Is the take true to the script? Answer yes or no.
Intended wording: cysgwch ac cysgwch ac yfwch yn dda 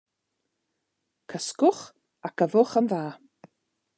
no